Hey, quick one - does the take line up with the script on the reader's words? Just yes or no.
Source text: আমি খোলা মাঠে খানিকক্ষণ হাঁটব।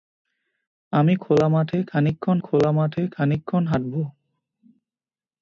no